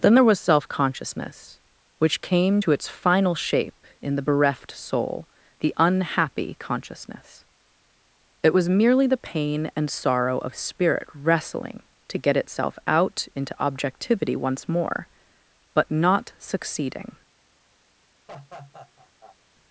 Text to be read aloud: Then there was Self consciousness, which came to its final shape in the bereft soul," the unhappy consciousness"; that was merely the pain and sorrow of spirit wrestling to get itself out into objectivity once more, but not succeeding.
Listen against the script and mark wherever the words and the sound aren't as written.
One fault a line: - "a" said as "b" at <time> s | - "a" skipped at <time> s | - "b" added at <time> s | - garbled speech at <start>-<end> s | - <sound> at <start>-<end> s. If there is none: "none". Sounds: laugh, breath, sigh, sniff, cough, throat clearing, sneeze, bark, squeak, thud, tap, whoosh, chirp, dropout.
- "that" said as "it" at 8.4 s
- laugh at 18.3-19.4 s